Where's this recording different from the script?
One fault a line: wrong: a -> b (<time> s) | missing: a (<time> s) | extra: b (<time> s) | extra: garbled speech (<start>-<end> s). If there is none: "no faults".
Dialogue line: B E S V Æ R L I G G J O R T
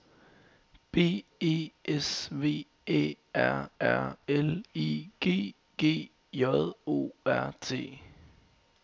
extra: R (3.8 s)